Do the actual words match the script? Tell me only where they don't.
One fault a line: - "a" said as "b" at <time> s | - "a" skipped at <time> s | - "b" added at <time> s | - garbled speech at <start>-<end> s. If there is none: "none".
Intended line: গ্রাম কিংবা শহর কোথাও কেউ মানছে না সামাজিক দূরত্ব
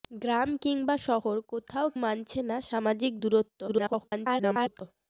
- "কেউ" skipped at 1.9 s
- garbled speech at 3.7-4.8 s